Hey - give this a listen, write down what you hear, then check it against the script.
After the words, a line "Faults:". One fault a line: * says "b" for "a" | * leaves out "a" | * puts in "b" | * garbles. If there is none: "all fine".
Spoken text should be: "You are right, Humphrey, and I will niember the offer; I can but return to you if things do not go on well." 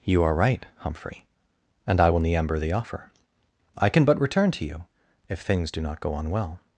"You are right, Humphrey, and I will niember the offer; I can but return to you if things do not go on well."
Faults:
all fine